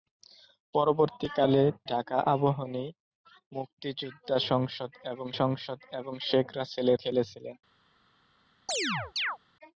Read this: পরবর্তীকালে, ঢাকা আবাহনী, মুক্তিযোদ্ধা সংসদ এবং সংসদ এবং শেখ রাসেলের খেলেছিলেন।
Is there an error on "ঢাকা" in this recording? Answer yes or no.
no